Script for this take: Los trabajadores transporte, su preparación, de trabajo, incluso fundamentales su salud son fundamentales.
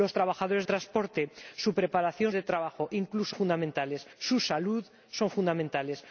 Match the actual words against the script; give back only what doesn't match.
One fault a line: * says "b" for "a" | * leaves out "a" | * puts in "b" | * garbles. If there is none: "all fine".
all fine